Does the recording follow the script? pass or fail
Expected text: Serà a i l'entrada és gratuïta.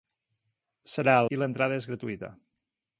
pass